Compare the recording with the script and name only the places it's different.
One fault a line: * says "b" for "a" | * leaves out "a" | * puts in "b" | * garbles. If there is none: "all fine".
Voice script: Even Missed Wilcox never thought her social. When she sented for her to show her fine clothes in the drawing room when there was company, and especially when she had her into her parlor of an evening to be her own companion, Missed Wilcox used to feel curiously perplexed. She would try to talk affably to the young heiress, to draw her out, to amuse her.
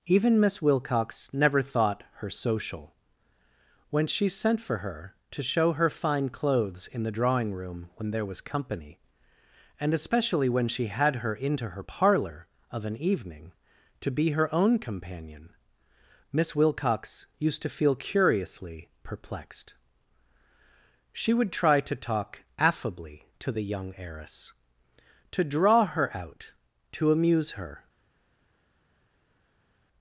* says "Miss" for "Missed"
* says "sent" for "sented"
* says "Miss" for "Missed"